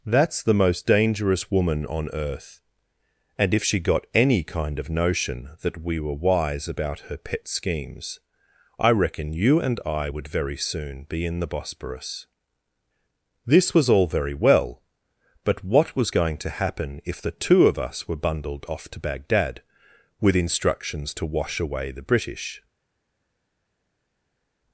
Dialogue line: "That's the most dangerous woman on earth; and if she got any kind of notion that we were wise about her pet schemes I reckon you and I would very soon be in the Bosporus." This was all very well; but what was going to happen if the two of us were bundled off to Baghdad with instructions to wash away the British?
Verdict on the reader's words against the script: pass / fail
pass